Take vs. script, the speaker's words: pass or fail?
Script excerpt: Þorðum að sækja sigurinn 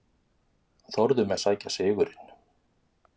pass